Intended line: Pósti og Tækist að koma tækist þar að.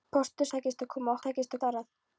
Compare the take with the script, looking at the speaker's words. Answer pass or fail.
pass